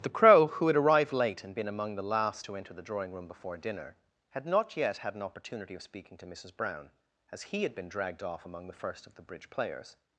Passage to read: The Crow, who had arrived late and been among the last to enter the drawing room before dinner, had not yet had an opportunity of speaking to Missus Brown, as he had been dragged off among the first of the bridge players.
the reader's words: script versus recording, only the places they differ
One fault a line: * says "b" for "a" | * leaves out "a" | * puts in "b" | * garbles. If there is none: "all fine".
all fine